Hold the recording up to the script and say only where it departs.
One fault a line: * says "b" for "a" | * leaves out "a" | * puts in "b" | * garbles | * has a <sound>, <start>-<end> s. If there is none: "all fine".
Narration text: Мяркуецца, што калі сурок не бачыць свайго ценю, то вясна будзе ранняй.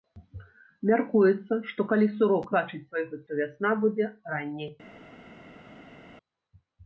* leaves out "не"
* leaves out "ценю"